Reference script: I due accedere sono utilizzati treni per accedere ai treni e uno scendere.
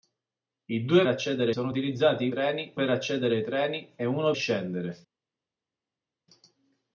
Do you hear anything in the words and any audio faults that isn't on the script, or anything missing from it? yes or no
no